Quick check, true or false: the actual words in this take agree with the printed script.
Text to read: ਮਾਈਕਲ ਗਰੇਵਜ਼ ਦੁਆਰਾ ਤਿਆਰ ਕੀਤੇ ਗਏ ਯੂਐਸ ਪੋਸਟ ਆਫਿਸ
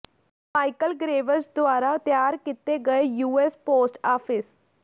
true